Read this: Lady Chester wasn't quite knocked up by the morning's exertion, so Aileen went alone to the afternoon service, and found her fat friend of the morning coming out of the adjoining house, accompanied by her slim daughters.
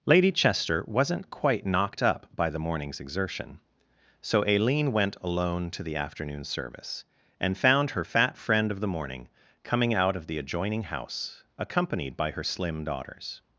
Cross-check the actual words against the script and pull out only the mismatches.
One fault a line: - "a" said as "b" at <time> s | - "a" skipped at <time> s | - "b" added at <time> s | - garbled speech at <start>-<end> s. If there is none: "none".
none